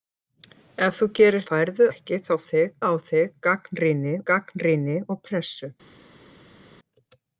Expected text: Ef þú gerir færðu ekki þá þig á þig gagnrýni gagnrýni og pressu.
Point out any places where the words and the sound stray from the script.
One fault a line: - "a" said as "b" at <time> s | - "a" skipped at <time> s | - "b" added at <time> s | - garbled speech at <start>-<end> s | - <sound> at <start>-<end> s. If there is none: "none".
none